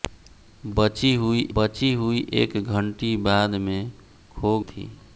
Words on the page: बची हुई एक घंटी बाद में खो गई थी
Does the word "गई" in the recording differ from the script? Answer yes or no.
yes